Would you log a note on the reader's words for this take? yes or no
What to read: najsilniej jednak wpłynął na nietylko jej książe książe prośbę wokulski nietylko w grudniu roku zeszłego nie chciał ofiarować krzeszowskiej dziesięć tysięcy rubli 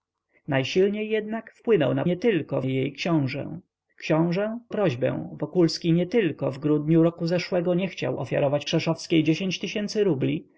no